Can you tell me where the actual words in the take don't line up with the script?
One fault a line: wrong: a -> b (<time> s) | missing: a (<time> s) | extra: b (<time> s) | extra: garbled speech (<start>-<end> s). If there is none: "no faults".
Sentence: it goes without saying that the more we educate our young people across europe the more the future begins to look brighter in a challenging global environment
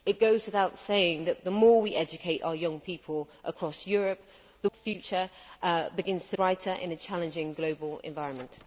missing: more (4.7 s)
missing: look (6.4 s)